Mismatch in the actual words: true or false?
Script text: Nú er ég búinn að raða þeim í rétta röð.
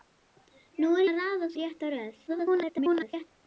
true